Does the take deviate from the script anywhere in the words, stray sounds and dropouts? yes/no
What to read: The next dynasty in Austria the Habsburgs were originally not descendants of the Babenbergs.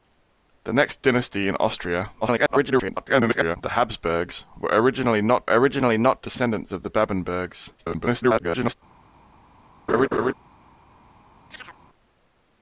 yes